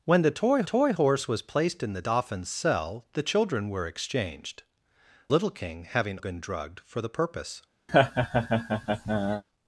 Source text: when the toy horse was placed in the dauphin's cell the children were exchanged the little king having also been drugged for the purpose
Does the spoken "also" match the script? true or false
false